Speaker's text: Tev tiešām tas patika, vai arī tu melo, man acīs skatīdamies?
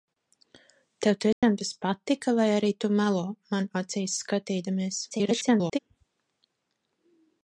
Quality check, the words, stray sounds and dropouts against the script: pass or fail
fail